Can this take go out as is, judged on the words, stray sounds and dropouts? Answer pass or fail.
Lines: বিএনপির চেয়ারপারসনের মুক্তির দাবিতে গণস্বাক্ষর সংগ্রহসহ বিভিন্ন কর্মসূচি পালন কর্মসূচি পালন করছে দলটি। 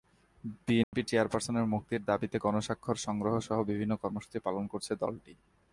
fail